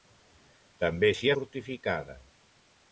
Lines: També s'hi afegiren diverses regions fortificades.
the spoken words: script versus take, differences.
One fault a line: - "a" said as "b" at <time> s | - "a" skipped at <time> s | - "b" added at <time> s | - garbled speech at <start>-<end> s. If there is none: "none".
- "afegiren diverses regions" skipped at 1.3 s